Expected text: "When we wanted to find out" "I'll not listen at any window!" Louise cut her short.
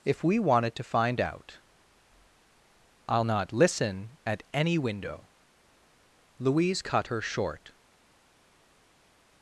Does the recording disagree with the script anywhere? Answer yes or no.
yes